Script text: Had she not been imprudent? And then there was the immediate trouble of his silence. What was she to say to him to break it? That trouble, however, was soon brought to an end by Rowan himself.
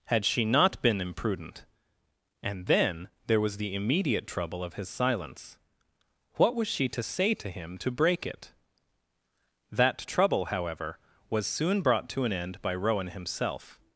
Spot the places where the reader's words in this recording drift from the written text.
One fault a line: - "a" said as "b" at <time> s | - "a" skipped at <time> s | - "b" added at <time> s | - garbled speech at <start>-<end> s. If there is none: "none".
none